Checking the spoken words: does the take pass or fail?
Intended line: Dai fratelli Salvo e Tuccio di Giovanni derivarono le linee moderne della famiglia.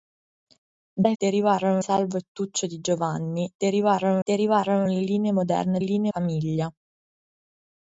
fail